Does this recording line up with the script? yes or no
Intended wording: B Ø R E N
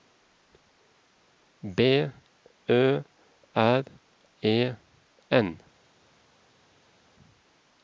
yes